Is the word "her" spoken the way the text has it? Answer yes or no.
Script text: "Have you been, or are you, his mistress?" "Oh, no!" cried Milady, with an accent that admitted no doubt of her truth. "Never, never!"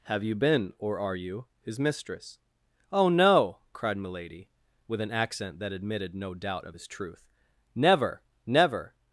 no